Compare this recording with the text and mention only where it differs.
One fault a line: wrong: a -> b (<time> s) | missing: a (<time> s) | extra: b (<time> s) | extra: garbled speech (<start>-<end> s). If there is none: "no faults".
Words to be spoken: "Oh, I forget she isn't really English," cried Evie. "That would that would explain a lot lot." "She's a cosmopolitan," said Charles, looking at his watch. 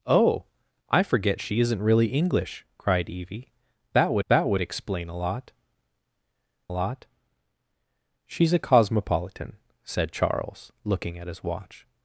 no faults